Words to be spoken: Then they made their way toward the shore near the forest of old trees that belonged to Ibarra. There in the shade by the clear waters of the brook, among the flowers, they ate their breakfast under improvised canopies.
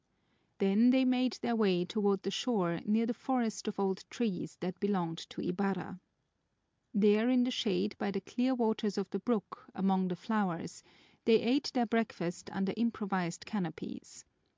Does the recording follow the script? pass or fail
pass